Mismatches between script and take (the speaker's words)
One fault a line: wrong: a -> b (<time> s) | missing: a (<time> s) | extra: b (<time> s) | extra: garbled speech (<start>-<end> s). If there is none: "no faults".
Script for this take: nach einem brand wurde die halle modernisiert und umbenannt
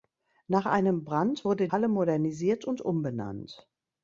missing: die (1.7 s)